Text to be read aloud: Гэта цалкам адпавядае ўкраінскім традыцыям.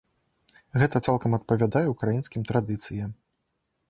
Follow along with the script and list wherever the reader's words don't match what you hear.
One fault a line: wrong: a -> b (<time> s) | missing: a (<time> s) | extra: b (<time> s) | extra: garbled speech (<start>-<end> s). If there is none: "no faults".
no faults